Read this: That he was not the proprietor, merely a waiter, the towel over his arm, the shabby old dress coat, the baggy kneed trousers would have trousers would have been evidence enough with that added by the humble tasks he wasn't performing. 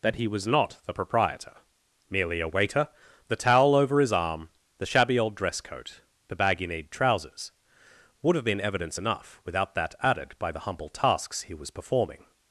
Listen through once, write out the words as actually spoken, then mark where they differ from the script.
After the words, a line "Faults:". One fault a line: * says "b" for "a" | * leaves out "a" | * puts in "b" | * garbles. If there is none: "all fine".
That he was not the proprietor, merely a waiter, the towel over his arm, the shabby old dress coat, the baggy kneed trousers would have been evidence enough without that added by the humble tasks he was performing.
Faults:
* leaves out "trousers would have"
* says "without" for "with"
* says "was" for "wasn't"